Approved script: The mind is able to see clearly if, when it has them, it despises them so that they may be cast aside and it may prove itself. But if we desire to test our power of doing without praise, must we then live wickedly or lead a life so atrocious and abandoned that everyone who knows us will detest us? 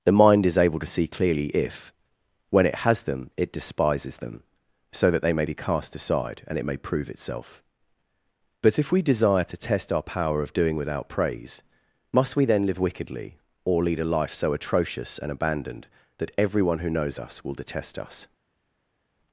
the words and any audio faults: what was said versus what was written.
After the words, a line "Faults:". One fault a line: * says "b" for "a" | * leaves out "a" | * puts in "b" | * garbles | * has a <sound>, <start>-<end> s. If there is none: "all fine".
The mind is able to see clearly if, when it has them, it despises them so that they may be cast aside and it may prove itself. But if we desire to test our power of doing without praise, must we then live wickedly or lead a life so atrocious and abandoned that everyone who knows us will detest us?
Faults:
all fine